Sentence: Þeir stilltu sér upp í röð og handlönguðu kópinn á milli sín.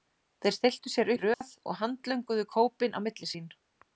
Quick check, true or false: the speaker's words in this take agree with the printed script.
false